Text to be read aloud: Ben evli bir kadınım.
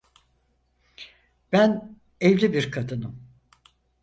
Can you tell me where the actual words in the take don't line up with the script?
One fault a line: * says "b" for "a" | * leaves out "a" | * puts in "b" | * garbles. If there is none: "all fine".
all fine